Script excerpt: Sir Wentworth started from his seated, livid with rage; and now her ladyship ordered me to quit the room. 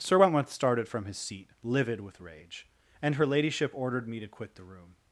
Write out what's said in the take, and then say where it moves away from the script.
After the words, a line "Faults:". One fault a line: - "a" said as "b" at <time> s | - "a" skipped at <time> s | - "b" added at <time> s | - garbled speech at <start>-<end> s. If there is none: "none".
Sir Wentworth started from his seat, livid with rage; and her ladyship ordered me to quit the room.
Faults:
- "seated" said as "seat" at 1.2 s
- "now" skipped at 3.2 s